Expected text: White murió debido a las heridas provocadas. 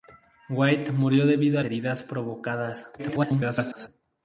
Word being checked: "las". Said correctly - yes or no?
no